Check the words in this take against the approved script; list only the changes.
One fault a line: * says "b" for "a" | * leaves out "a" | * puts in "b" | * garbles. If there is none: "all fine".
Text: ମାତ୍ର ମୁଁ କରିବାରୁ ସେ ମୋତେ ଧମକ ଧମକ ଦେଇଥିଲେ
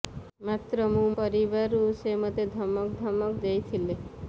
all fine